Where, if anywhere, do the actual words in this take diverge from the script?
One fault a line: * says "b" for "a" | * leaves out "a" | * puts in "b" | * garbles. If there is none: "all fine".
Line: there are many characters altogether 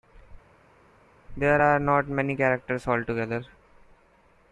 * puts in "not"